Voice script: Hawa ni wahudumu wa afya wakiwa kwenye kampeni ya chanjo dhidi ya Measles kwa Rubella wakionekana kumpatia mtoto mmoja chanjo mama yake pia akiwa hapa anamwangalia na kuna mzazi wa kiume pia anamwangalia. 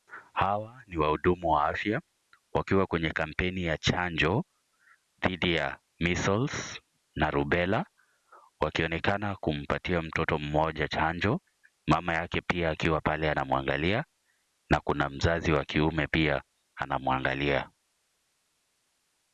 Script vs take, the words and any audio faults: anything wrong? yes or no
yes